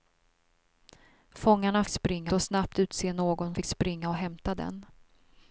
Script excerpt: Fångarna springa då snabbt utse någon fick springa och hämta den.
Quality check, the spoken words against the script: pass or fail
pass